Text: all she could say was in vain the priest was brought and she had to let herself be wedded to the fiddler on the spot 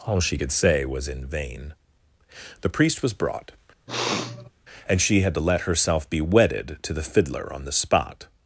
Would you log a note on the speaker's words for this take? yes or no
no